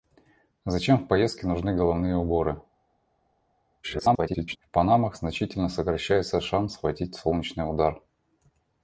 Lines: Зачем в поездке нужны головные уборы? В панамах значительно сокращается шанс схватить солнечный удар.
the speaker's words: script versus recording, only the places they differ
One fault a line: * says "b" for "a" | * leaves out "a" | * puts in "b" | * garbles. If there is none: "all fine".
* garbles